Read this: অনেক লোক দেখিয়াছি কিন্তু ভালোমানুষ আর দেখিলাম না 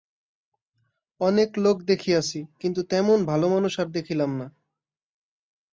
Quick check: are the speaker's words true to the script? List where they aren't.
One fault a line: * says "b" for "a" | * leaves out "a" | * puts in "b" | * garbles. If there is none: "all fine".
* puts in "তেমন"